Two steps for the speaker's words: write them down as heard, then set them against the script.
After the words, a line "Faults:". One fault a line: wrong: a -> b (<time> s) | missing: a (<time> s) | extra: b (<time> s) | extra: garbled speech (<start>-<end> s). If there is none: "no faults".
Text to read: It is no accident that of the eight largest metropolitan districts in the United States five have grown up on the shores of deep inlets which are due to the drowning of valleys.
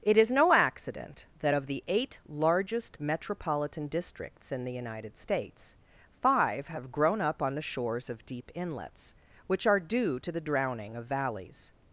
It is no accident that of the eight largest metropolitan districts in the United States five have grown up on the shores of deep inlets which are due to the drowning of valleys.
Faults:
no faults